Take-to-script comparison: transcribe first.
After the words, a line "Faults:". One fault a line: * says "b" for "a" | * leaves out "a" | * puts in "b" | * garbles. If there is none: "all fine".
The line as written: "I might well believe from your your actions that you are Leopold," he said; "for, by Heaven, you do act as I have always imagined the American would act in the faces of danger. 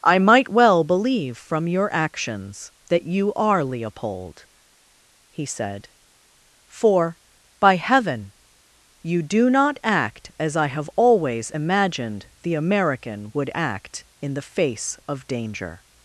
"I might well believe from your actions that you are Leopold," he said; "for, by Heaven, you do not act as I have always imagined the American would act in the face of danger.
Faults:
* leaves out "your"
* puts in "not"
* says "face" for "faces"